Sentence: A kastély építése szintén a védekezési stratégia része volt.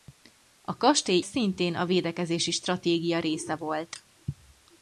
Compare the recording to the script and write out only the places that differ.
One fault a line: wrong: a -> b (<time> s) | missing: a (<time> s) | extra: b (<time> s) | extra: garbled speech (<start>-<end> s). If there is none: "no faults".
missing: építése (1.2 s)